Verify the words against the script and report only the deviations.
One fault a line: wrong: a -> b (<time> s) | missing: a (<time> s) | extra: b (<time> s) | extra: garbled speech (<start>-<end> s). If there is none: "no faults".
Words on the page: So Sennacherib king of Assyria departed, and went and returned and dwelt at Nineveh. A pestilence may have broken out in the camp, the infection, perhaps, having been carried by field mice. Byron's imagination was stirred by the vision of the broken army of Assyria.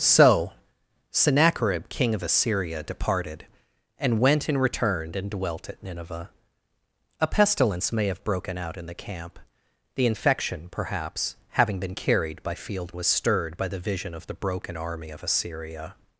missing: mice Byron's imagination (12.9 s)